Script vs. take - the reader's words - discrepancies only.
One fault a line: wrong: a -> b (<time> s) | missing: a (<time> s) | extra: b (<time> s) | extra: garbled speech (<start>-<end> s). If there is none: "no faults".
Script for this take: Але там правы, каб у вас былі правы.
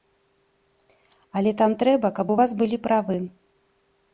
wrong: правы -> трэба (1.8 s)